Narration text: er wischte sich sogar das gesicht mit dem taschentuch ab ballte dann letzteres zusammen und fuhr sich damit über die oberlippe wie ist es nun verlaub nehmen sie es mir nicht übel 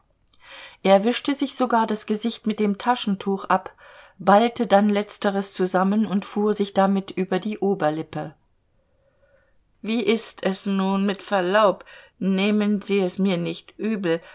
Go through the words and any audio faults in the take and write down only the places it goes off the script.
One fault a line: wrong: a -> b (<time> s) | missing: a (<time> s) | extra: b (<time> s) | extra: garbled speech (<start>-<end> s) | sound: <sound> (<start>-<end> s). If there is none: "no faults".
extra: mit (11.0 s)